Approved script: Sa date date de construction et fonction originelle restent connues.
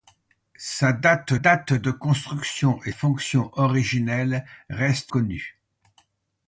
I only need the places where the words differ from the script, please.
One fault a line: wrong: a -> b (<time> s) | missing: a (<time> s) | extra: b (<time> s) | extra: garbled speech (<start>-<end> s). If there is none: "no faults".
no faults